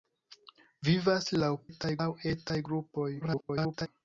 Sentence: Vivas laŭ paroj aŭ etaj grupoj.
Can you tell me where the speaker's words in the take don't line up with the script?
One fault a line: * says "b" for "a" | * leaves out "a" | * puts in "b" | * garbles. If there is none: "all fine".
* says "etaj" for "paroj"
* garbles